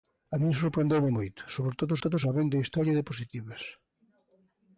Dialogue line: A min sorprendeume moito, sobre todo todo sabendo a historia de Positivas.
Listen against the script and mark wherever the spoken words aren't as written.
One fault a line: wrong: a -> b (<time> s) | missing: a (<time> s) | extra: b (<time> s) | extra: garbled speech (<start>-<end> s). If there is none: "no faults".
no faults